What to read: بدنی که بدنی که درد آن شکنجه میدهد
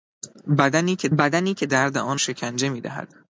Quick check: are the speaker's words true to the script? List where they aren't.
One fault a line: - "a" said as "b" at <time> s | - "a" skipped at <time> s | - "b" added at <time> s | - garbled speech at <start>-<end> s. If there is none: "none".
none